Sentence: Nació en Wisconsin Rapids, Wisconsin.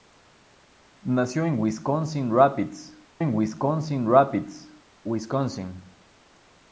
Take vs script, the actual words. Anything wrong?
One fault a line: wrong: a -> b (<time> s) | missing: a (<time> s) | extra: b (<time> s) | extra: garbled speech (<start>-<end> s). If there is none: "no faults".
extra: en Wisconsin Rapids (3.2 s)